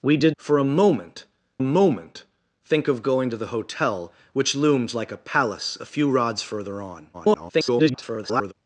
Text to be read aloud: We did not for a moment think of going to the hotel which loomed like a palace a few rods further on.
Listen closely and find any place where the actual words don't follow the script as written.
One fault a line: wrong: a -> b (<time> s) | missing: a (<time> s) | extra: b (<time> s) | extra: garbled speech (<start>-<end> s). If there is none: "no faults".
missing: not (0.3 s)
extra: moment (1.6 s)
extra: garbled speech (7.1-8.5 s)